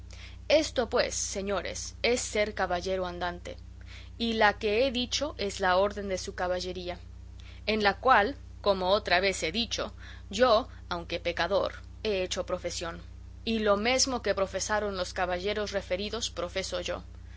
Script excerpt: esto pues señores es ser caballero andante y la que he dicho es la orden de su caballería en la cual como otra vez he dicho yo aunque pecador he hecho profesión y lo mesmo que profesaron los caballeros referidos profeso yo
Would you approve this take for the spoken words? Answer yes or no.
yes